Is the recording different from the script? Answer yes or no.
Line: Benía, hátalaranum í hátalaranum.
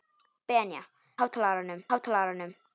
no